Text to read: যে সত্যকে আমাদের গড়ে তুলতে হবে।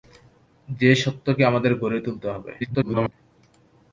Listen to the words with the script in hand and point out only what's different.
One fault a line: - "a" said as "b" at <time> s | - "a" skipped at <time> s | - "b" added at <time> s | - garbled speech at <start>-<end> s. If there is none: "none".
- garbled speech at 2.6-3.1 s